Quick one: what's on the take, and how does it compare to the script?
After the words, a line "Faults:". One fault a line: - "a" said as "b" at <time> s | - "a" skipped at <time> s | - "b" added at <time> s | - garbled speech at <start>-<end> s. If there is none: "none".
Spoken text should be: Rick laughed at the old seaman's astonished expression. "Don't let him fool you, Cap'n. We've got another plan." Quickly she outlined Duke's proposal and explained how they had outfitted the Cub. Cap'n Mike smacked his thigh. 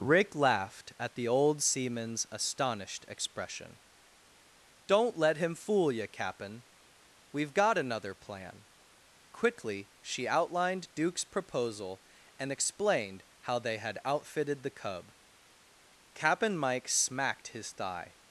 Rick laughed at the old seaman's astonished expression. "Don't let him fool you, Cap'n. We've got another plan." Quickly she outlined Duke's proposal and explained how they had outfitted the Cub. Cap'n Mike smacked his thigh.
Faults:
none